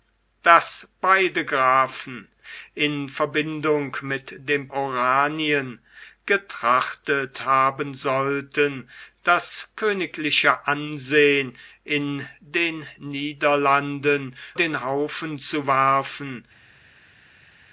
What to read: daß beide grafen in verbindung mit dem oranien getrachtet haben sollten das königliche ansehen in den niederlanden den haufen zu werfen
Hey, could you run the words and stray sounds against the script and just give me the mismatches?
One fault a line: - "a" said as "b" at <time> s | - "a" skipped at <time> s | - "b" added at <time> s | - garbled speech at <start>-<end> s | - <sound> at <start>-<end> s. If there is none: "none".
none